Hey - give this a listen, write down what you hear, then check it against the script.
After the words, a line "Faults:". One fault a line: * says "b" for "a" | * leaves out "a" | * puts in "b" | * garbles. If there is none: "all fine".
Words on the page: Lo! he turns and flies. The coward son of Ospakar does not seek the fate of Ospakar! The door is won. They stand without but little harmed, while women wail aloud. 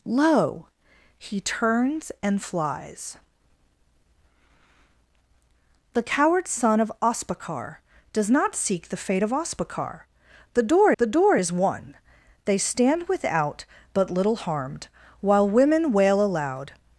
Lo! he turns and flies. The coward son of Ospakar does not seek the fate of Ospakar! The door the door is won. They stand without but little harmed, while women wail aloud.
Faults:
* puts in "the door"